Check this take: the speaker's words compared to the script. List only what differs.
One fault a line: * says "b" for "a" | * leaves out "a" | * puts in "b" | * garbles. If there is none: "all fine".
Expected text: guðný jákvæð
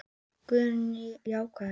all fine